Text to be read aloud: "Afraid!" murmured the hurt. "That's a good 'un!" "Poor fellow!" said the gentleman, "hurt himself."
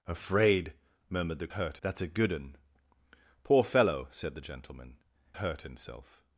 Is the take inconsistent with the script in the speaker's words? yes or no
no